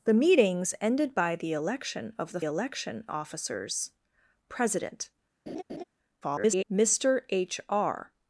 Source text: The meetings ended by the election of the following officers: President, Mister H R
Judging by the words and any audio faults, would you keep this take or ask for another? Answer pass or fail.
fail